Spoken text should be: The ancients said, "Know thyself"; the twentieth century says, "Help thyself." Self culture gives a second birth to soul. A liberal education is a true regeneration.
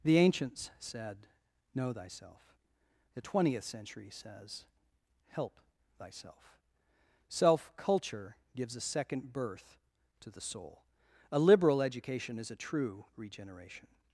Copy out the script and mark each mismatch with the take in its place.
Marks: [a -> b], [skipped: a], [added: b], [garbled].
The ancients said, "Know thyself"; the twentieth century says, "Help thyself." Self culture gives a second birth to [added: the] soul. A liberal education is a true regeneration.